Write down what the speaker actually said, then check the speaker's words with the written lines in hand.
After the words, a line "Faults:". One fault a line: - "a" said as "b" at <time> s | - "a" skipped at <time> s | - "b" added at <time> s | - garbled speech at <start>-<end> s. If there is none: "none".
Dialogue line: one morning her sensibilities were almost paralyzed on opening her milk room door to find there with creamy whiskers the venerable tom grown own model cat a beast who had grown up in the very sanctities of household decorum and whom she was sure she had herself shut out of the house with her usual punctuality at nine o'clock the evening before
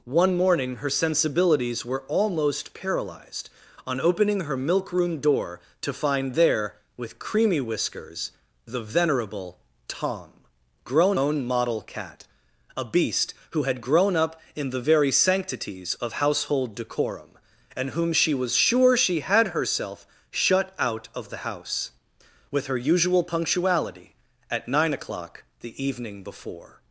one morning her sensibilities were almost paralyzed on opening her milk room door to find there with creamy whiskers the venerable tom grown own model cat a beast who had grown up in the very sanctities of household decorum and whom she was sure she had herself shut out of the house with her usual punctuality at nine o'clock the evening before
Faults:
none